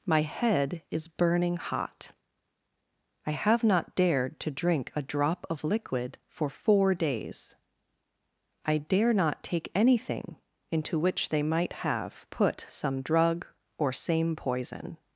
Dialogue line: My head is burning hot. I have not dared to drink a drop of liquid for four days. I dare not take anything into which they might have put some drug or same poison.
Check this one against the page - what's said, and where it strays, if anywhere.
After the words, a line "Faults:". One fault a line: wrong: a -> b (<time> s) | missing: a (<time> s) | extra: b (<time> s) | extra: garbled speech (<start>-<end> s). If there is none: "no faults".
My head is burning hot. I have not dared to drink a drop of liquid for four days. I dare not take anything into which they might have put some drug or same poison.
Faults:
no faults